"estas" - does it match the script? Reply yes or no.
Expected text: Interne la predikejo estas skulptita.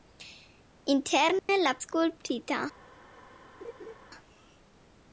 no